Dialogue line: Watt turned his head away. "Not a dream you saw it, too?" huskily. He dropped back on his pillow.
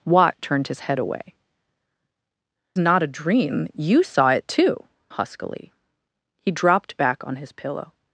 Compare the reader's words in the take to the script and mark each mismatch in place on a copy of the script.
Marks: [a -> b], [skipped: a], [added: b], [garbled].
Watt turned his head away. "Not a dream you saw it, too?" huskily. He dropped back on his pillow.